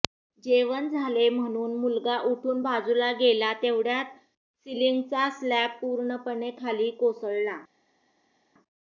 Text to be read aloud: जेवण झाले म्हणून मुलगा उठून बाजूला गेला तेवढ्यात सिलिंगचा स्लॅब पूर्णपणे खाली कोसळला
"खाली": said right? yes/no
yes